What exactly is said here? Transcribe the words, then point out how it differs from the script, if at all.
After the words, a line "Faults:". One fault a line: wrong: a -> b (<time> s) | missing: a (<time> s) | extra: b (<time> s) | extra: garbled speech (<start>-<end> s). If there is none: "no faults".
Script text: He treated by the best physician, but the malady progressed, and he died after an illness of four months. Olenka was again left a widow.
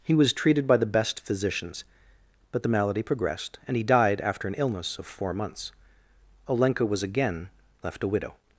He was treated by the best physicians, but the malady progressed, and he died after an illness of four months. Olenka was again left a widow.
Faults:
extra: was (0.1 s)
wrong: physician -> physicians (1.2 s)